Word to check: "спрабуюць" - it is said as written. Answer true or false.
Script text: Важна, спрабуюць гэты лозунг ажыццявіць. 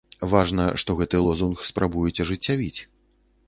false